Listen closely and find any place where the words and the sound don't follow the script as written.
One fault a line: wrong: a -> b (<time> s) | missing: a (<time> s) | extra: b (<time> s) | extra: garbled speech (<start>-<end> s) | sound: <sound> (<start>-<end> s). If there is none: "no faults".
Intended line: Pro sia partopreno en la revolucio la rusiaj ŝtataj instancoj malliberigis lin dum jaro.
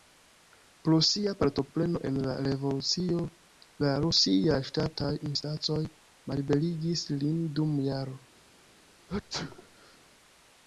sound: sneeze (9.1-10.0 s)